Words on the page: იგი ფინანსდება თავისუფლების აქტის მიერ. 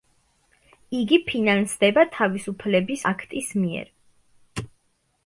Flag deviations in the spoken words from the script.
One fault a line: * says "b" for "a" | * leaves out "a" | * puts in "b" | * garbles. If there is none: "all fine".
all fine